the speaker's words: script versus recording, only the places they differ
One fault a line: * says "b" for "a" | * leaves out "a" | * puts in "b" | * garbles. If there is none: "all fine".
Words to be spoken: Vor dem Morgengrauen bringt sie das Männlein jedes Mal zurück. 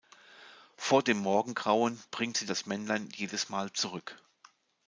all fine